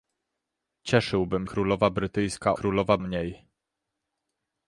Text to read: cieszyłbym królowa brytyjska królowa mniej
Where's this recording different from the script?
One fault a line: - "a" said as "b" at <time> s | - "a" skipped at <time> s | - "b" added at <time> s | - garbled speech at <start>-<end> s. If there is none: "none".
none